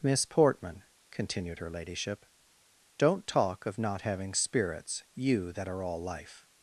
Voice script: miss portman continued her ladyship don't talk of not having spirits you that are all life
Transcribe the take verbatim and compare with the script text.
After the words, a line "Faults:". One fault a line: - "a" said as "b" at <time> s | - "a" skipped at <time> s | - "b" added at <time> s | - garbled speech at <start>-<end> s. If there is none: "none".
miss portman continued her ladyship don't talk of not having spirits you that are all life
Faults:
none